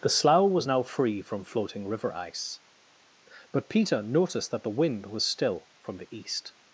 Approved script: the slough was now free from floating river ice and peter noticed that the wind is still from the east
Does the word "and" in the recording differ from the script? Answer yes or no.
yes